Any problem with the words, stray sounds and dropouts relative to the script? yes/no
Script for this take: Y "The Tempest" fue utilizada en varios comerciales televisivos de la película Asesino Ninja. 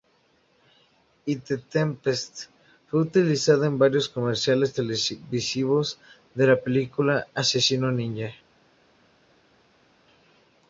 no